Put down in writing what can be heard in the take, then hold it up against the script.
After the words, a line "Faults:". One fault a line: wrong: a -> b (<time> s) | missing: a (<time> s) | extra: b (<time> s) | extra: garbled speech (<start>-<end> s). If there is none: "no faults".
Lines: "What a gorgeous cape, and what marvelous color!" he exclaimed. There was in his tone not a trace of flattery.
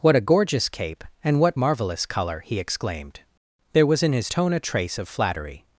"What a gorgeous cape, and what marvelous color!" he exclaimed. There was in his tone a trace of flattery.
Faults:
missing: not (4.5 s)